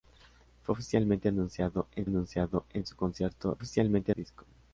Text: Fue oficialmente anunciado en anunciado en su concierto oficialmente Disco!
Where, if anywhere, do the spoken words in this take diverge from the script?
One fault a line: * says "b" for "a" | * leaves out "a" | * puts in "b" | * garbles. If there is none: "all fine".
all fine